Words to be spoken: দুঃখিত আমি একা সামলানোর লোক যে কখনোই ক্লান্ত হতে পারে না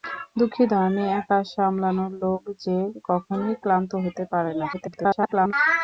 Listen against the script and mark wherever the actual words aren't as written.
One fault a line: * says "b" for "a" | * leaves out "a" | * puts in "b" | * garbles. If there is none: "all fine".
* garbles